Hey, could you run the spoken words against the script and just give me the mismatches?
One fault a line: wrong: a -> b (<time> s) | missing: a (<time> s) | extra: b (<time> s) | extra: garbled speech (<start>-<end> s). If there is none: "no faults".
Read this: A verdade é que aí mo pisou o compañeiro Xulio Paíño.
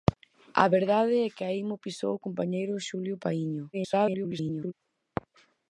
extra: garbled speech (3.7-4.7 s)